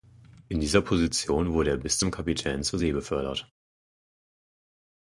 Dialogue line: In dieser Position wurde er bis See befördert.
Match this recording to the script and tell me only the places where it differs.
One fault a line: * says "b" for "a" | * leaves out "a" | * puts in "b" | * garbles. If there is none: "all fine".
* puts in "zum Kapitän zur"